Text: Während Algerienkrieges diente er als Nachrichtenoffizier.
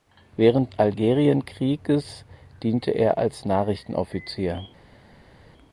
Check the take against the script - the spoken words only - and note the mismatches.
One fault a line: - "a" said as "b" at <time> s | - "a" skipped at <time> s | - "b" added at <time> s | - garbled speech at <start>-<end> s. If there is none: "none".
none